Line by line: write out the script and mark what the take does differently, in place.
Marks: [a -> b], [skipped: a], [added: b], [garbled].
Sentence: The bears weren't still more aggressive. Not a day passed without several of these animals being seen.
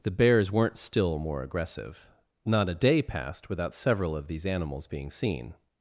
The bears weren't still more aggressive. Not a day passed without several of these animals being seen.